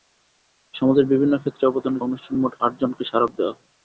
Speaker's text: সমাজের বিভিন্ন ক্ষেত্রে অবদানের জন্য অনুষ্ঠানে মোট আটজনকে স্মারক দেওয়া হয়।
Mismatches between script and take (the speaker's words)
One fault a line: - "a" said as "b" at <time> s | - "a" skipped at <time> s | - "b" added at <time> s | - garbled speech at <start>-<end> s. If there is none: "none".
- "জন্য" skipped at 2.0 s